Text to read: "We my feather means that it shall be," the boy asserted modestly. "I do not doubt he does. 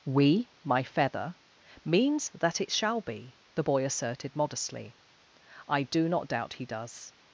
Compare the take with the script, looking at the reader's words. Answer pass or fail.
pass